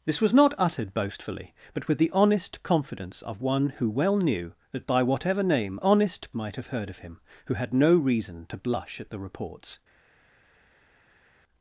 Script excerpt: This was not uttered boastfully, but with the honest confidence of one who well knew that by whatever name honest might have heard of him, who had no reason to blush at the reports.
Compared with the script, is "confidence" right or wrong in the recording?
right